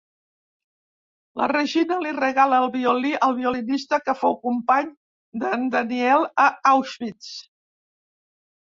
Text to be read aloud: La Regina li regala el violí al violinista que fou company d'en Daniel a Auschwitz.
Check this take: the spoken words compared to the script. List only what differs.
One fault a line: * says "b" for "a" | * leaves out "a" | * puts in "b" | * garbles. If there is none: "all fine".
all fine